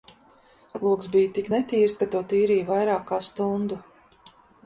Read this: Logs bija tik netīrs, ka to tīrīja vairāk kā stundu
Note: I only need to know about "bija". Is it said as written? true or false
true